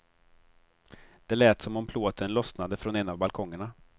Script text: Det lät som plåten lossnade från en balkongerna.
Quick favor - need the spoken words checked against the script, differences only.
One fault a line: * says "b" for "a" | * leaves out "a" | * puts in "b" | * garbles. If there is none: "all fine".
* puts in "om"
* puts in "av"